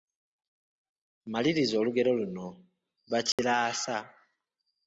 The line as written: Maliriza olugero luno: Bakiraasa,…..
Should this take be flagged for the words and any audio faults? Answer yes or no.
yes